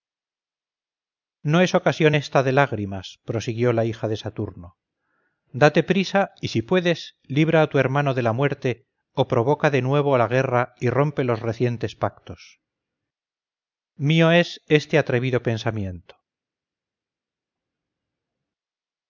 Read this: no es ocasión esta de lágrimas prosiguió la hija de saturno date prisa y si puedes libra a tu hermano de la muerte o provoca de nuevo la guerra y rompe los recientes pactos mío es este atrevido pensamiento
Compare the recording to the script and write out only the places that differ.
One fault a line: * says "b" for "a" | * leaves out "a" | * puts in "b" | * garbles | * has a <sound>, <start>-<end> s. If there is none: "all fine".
all fine